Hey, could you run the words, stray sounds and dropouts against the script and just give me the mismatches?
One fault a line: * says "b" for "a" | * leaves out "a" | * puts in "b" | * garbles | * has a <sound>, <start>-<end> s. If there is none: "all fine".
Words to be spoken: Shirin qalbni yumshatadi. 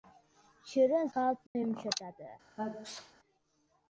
* has a dropout, 1.5-1.6 s
* has a sneeze, 2.6-3.1 s